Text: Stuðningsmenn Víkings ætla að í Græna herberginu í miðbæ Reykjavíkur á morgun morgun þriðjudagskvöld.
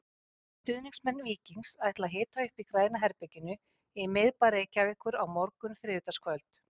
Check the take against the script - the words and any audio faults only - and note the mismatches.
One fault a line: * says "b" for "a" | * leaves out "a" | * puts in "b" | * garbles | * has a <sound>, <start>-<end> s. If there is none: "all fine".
* puts in "hita upp"
* leaves out "morgun"